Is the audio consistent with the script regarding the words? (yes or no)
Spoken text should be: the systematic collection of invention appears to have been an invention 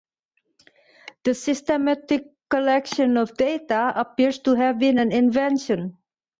no